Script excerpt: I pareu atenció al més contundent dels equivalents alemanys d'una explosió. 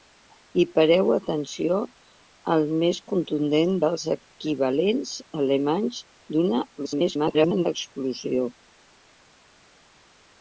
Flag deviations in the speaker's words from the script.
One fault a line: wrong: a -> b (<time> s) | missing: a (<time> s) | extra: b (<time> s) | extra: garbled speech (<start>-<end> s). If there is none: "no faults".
extra: garbled speech (6.8-7.7 s)